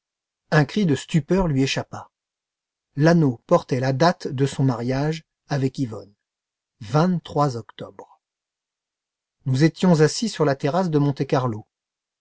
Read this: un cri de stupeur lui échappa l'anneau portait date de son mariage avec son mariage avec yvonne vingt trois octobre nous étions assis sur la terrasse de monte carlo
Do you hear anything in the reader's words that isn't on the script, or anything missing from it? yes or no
yes